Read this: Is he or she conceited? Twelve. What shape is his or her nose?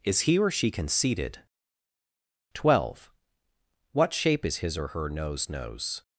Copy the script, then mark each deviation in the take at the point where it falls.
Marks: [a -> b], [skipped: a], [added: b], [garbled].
Is he or she conceited? Twelve. What shape is his or her nose? [added: nose]